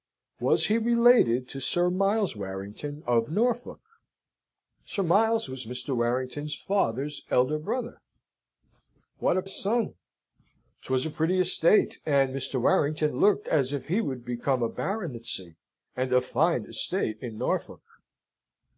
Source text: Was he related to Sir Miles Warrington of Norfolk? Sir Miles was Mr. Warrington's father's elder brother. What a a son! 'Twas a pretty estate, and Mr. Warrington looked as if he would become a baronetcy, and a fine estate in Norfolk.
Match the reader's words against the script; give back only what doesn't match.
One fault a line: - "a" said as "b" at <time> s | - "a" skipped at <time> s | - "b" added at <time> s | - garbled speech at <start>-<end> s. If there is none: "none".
none